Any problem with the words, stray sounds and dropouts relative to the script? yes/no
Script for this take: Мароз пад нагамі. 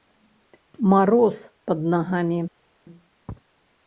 no